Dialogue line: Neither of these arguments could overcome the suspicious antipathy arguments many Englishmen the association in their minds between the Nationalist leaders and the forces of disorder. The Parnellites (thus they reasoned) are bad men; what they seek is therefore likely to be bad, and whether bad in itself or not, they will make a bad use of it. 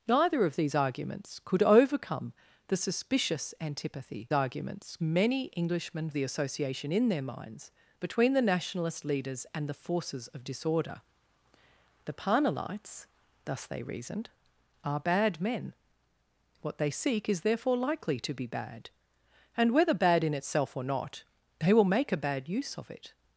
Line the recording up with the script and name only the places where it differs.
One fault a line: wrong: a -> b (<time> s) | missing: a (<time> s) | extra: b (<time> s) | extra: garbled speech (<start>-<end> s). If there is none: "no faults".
no faults